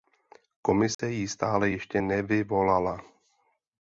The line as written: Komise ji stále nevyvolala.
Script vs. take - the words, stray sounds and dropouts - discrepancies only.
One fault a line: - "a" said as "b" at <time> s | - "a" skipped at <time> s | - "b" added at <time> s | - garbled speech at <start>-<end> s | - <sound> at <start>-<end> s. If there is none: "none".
- dropout at 0.9-1.0 s
- "ještě" added at 1.7 s